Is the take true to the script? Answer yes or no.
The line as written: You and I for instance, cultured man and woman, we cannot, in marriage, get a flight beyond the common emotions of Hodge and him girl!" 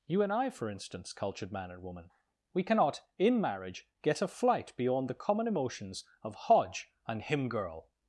yes